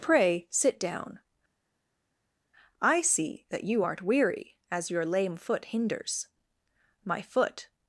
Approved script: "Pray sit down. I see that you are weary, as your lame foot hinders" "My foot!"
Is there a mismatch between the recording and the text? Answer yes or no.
yes